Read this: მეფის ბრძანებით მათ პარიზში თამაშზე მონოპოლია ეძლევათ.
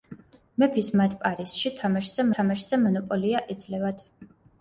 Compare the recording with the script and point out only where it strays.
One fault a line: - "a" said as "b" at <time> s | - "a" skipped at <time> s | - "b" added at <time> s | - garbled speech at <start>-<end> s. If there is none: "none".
- "ბრძანებით" skipped at 0.9 s
- "თამაშზე" added at 2.4 s